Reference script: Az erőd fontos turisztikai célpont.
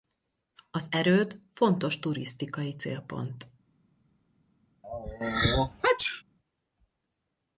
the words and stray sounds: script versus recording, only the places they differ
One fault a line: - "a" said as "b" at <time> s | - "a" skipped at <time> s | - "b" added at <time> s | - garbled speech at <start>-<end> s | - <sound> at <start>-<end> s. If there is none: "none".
- sneeze at 4.8-6.2 s